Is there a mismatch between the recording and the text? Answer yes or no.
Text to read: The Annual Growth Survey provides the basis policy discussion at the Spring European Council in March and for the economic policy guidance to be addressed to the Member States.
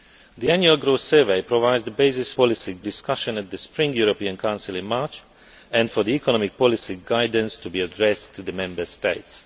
no